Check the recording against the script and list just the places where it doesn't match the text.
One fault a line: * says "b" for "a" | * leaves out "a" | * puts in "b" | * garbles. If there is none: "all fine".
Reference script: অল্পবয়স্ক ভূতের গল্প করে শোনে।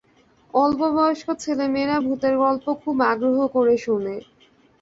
* puts in "ছেলেমেয়েরা"
* puts in "খুব আগ্রহ"